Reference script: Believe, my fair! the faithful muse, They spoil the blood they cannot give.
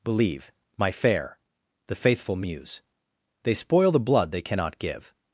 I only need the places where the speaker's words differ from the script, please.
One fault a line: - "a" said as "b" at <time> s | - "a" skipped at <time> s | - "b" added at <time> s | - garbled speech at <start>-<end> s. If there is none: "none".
none